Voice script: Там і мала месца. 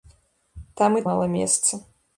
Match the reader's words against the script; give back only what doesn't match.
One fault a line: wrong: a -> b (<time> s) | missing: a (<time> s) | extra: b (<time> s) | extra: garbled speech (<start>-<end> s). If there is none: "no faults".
no faults